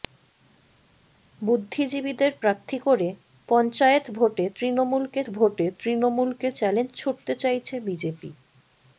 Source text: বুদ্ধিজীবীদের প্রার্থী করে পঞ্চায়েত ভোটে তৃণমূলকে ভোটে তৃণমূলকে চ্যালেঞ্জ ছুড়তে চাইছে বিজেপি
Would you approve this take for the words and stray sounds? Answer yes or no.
yes